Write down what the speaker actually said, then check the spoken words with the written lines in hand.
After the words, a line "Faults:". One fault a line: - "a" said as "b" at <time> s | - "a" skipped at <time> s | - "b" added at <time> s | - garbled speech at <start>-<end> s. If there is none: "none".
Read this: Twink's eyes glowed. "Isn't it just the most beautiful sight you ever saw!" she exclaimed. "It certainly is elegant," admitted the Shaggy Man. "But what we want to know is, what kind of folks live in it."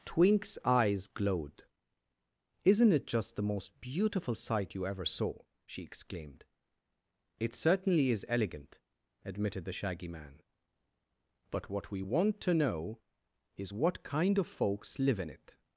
Twink's eyes glowed. "Isn't it just the most beautiful sight you ever saw!" she exclaimed. "It certainly is elegant," admitted the Shaggy Man. "But what we want to know is, what kind of folks live in it."
Faults:
none